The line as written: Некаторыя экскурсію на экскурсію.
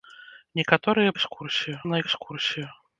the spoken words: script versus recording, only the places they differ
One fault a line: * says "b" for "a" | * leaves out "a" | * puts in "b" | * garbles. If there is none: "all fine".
all fine